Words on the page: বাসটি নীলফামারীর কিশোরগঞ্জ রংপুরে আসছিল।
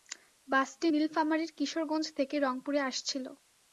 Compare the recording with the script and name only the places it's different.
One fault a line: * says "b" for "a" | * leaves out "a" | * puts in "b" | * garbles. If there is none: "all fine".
* puts in "থেকে"